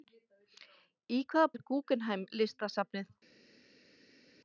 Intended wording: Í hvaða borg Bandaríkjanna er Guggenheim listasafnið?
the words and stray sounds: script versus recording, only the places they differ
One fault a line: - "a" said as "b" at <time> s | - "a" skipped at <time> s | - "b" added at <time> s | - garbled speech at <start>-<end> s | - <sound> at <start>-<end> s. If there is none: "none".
- "borg Bandaríkjanna" skipped at 1.5 s